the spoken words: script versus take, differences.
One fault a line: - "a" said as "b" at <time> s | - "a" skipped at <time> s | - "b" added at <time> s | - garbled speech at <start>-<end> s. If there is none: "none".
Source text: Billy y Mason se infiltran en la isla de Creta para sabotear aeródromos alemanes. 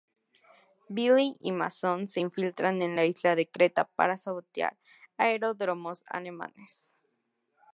none